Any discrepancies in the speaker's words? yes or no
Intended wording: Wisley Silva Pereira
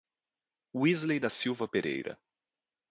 yes